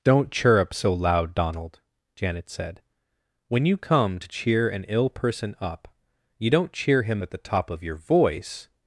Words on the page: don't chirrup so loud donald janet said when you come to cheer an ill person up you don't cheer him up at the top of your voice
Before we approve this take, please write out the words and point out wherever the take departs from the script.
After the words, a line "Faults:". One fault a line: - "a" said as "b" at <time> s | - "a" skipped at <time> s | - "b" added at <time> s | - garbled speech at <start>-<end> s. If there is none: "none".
don't chirrup so loud donald janet said when you come to cheer an ill person up you don't cheer him at the top of your voice
Faults:
- "up" skipped at 7.2 s